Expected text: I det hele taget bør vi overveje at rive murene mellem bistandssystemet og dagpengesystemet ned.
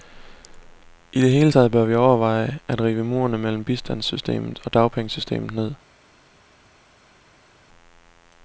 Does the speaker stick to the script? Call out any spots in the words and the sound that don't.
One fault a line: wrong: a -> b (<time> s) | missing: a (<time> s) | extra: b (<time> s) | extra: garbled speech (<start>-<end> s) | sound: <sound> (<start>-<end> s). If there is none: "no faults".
no faults